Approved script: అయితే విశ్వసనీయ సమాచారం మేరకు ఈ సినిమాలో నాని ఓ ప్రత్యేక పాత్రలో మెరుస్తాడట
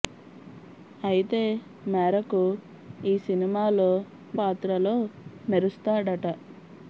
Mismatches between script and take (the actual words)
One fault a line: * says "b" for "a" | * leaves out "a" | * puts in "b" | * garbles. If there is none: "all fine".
* leaves out "విశ్వసనీయ సమాచారం"
* leaves out "నాని ఓ ప్రత్యేక"